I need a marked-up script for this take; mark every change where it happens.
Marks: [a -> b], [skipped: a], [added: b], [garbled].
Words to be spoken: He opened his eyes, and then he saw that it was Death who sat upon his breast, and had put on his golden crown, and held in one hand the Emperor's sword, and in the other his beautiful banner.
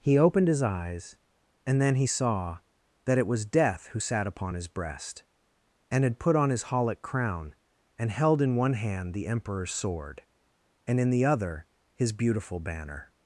He opened his eyes, and then he saw that it was Death who sat upon his breast, and had put on his [golden -> holic] crown, and held in one hand the Emperor's sword, and in the other his beautiful banner.